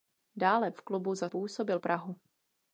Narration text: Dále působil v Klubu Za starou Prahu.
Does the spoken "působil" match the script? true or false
false